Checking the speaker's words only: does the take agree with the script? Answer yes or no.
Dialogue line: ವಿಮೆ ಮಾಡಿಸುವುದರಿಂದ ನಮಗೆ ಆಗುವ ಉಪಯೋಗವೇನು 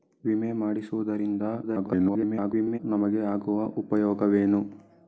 no